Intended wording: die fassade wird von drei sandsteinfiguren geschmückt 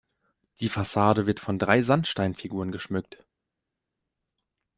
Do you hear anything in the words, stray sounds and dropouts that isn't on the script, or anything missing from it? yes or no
no